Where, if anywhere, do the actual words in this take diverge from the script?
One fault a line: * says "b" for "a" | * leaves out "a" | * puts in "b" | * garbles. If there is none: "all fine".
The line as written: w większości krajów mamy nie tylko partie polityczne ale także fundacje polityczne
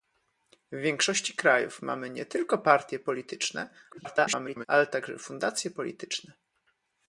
* garbles